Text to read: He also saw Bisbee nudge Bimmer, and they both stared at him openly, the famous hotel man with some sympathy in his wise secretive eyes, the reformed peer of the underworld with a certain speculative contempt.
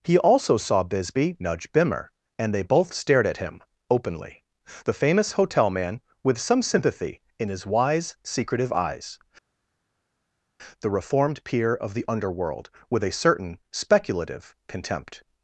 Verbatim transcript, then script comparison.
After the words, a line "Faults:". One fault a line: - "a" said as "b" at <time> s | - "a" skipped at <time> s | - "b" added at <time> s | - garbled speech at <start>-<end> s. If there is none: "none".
He also saw Bisbee nudge Bimmer, and they both stared at him openly, the famous hotel man with some sympathy in his wise secretive eyes, the reformed peer of the underworld with a certain speculative contempt.
Faults:
none